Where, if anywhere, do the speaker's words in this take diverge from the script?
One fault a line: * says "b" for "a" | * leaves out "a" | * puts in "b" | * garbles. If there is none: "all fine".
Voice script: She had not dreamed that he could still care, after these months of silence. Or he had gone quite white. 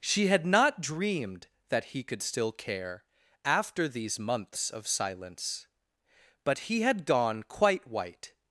* says "But" for "Or"